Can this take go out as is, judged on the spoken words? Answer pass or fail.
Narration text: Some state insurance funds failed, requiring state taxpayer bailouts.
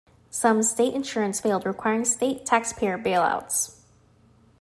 fail